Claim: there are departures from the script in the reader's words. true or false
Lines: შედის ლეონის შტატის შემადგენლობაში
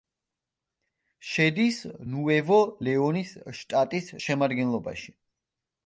true